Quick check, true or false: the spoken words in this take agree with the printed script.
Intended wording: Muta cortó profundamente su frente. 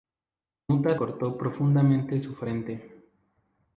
true